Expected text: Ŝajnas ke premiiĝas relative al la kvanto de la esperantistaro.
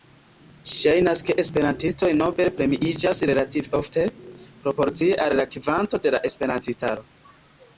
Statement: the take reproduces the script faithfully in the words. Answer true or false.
false